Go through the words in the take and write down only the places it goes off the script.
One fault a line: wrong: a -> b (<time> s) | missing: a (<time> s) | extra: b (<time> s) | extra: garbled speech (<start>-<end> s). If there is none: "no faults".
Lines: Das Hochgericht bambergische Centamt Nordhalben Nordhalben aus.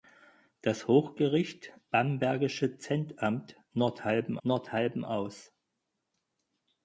no faults